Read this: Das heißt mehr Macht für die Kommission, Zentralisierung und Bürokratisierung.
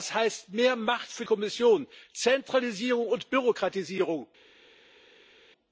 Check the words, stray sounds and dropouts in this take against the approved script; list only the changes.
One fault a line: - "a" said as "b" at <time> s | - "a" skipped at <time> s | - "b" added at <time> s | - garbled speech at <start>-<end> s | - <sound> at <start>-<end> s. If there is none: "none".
- "die" skipped at 1.2 s